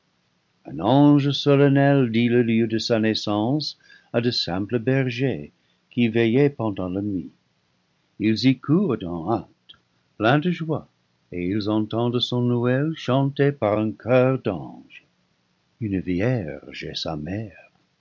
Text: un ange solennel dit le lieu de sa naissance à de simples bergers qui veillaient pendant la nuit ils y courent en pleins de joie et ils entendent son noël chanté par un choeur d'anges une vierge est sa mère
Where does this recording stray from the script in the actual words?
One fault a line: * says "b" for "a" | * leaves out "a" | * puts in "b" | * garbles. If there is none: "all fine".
* puts in "hâte"